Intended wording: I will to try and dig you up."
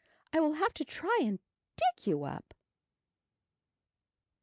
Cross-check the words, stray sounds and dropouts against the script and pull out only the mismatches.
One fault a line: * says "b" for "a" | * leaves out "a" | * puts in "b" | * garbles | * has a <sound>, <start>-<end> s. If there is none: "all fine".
* puts in "have"